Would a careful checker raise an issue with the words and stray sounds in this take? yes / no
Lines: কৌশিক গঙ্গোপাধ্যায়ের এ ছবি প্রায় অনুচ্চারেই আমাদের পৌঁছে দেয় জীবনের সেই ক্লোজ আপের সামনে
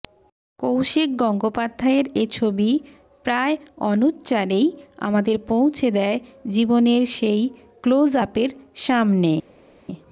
no